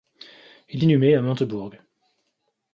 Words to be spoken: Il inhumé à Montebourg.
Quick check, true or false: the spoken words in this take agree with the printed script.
true